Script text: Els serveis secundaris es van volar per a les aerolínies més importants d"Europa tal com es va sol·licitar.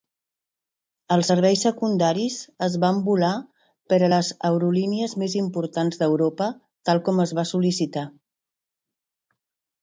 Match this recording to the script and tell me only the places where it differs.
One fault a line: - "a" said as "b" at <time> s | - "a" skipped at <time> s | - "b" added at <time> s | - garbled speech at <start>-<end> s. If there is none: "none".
none